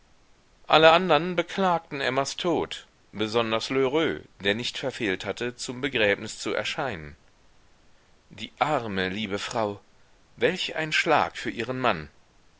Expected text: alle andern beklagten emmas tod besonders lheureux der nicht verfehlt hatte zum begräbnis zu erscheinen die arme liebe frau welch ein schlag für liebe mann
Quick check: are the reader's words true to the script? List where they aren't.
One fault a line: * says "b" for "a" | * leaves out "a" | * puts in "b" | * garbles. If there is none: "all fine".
* says "ihren" for "liebe"